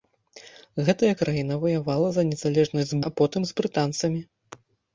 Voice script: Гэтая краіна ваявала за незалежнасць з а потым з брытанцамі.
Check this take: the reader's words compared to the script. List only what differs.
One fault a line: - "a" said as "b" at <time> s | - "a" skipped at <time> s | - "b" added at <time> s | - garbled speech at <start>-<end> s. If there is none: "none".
none